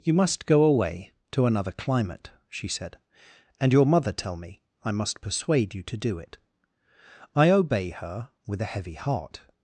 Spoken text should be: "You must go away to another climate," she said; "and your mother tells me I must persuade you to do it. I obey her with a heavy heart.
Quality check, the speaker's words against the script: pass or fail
fail